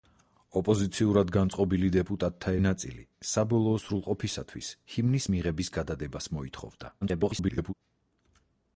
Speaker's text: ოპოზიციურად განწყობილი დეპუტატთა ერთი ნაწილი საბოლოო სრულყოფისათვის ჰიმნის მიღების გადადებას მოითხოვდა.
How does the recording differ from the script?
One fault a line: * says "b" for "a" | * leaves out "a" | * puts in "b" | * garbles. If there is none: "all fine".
* leaves out "ერთი"
* garbles